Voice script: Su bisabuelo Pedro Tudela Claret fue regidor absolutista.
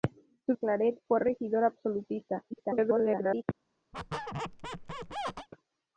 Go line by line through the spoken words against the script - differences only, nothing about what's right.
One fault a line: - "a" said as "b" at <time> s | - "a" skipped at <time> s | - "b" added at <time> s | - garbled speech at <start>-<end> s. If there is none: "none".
- "bisabuelo Pedro Tudela" skipped at 0.6 s
- garbled speech at 2.5-3.4 s